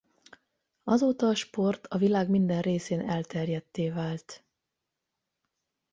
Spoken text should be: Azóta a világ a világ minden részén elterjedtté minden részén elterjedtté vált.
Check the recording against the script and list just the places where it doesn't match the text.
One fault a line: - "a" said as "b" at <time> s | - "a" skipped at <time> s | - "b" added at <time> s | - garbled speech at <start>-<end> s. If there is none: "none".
- "világ" said as "sport" at 1.4 s
- "minden részén elterjedtté" skipped at 3.9 s